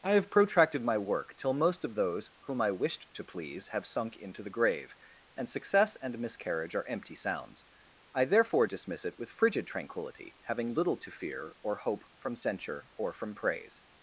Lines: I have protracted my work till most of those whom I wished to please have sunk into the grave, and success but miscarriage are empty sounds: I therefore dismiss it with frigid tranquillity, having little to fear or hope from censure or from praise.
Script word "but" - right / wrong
wrong